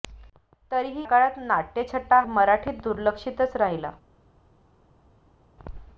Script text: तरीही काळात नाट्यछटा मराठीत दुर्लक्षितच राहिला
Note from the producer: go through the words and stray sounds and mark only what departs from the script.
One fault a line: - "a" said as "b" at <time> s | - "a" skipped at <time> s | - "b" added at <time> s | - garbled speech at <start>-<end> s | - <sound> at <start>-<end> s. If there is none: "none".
none